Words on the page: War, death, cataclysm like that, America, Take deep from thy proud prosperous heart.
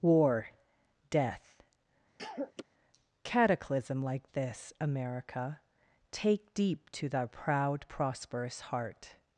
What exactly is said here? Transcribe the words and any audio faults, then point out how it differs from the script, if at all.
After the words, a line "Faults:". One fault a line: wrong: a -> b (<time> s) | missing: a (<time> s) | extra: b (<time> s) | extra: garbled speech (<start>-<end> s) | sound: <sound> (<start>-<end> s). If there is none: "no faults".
War, death, cataclysm like this, America, Take deep to thy proud prosperous heart.
Faults:
sound: cough (2.2-2.6 s)
wrong: that -> this (4.3 s)
wrong: from -> to (6.9 s)